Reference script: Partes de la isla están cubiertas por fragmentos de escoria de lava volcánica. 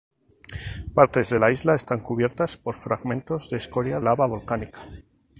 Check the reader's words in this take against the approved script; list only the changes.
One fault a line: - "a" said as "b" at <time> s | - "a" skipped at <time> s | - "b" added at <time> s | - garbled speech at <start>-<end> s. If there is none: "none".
- "de" skipped at 4.0 s